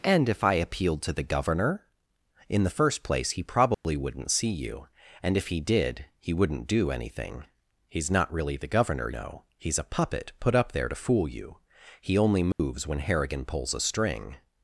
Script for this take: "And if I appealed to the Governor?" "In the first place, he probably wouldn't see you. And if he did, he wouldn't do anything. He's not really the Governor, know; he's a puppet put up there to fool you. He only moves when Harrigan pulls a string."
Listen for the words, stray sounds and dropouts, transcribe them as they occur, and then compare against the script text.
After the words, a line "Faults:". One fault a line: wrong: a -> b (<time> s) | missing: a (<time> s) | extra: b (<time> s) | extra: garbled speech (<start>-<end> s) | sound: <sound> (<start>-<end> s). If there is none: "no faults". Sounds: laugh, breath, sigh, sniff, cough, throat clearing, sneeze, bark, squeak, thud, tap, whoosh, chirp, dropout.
"And if I appealed to the Governor?" "In the first place, he probably wouldn't see you. And if he did, he wouldn't do anything. He's not really the Governor, know; he's a puppet put up there to fool you. He only moves when Harrigan pulls a string."
Faults:
sound: dropout (3.7-3.8 s)
sound: dropout (12.5-12.6 s)